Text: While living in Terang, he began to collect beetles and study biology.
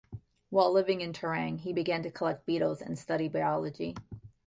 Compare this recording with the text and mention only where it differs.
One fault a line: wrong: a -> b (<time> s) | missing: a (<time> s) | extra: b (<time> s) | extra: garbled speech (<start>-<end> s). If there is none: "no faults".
no faults